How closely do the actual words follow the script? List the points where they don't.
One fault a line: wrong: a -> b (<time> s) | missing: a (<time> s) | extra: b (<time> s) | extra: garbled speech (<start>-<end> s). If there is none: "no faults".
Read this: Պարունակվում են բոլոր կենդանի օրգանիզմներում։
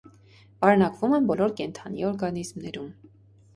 no faults